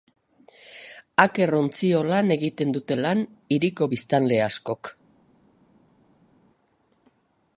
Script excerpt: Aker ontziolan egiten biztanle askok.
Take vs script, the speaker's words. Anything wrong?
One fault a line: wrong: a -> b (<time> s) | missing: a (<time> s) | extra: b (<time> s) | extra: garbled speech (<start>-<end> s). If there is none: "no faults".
extra: dute lan hiriko (2.8 s)